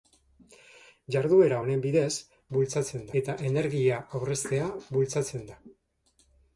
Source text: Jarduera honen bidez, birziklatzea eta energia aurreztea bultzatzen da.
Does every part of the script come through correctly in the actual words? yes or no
no